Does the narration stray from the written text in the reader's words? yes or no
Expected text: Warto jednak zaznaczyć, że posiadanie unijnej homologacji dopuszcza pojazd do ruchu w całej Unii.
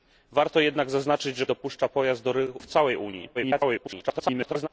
yes